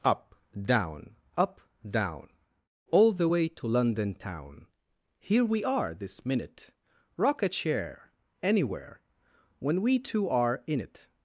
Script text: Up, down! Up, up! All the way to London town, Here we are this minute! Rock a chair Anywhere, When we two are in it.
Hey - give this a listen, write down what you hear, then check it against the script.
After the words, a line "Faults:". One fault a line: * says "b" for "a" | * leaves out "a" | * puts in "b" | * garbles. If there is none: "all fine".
Up, down! Up, down! All the way to London town, Here we are this minute! Rock a chair Anywhere, When we two are in it.
Faults:
* says "down" for "up"